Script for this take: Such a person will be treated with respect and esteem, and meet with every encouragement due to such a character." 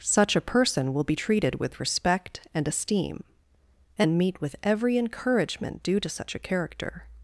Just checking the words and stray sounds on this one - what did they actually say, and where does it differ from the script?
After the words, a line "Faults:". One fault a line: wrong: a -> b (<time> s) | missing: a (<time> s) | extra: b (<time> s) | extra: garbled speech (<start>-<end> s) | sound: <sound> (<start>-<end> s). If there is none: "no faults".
Such a person will be treated with respect and esteem, and meet with every encouragement due to such a character."
Faults:
no faults